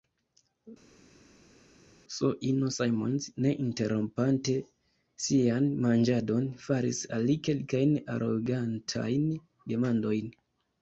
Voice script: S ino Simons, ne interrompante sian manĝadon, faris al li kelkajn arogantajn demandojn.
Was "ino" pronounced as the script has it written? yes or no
yes